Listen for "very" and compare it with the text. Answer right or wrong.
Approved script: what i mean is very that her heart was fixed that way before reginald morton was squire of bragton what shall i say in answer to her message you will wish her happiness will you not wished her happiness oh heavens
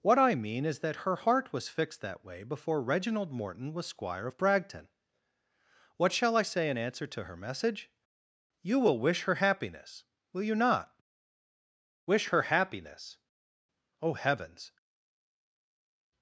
wrong